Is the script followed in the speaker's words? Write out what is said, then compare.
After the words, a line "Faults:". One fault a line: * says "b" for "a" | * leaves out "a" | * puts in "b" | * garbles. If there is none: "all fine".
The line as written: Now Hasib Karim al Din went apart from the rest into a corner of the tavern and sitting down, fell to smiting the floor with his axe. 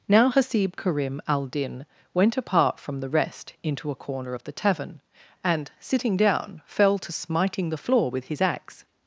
Now Hasib Karim al Din went apart from the rest into a corner of the tavern and sitting down, fell to smiting the floor with his axe.
Faults:
all fine